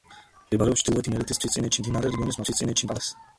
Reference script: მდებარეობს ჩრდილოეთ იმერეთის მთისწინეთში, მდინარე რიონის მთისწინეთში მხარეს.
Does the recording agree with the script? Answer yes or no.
yes